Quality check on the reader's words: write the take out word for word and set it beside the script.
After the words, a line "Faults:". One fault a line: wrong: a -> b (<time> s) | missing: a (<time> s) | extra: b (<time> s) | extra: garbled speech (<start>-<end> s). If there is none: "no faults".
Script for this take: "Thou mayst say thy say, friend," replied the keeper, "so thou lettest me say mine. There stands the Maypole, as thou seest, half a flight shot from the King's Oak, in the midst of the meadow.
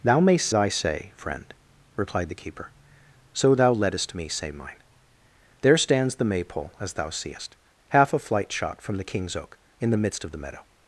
"Thou mayst thy say, friend," replied the keeper, "so thou lettest me say mine. There stands the Maypole, as thou seest, half a flight shot from the King's Oak, in the midst of the meadow.
Faults:
missing: say (0.5 s)